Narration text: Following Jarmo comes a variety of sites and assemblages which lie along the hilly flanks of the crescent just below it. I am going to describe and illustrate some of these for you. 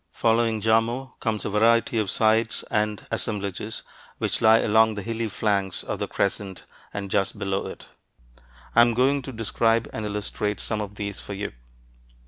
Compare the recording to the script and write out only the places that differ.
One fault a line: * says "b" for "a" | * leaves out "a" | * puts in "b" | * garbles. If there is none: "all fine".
* puts in "and"